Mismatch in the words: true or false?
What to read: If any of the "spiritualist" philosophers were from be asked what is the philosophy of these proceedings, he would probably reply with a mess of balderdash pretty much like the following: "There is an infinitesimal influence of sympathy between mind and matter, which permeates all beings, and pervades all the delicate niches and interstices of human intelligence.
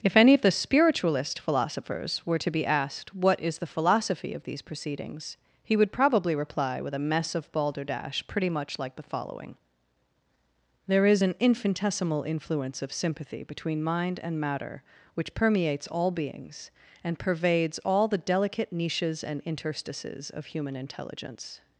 true